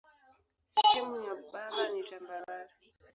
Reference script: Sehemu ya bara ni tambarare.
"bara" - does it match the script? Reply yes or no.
yes